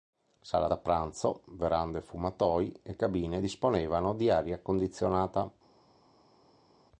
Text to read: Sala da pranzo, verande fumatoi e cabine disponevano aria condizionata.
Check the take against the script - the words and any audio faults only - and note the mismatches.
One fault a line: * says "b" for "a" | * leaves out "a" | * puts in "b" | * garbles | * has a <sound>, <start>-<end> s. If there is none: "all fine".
* puts in "di"